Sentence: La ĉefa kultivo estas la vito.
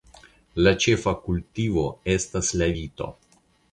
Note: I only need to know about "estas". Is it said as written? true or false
true